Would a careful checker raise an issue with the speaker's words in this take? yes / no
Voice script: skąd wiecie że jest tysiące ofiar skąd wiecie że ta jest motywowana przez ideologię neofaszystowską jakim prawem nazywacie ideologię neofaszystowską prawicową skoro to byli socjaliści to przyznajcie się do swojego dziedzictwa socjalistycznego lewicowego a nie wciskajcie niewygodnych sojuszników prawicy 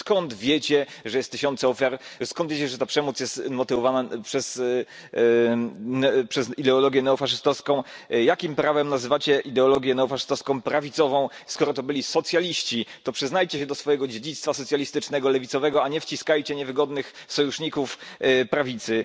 yes